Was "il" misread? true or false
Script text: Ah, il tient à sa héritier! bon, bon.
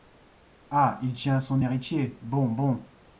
false